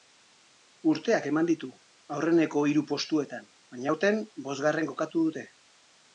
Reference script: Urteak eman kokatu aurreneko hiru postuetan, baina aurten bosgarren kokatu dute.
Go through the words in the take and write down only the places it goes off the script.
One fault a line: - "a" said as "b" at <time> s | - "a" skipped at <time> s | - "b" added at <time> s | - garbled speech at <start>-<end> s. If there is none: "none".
- "kokatu" said as "ditu" at 1.5 s